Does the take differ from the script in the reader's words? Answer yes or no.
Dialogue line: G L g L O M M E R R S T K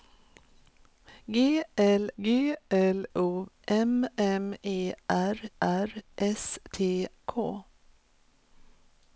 no